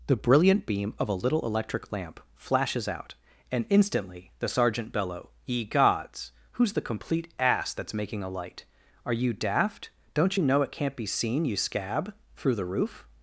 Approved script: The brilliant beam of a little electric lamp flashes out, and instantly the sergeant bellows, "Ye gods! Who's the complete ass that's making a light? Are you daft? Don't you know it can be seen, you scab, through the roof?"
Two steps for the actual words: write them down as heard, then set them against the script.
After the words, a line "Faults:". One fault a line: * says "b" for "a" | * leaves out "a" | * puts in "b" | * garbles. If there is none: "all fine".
The brilliant beam of a little electric lamp flashes out, and instantly the sergeant bellow, "Ye gods! Who's the complete ass that's making a light? Are you daft? Don't you know it can't be seen, you scab, through the roof?"
Faults:
* says "bellow" for "bellows"
* says "can't" for "can"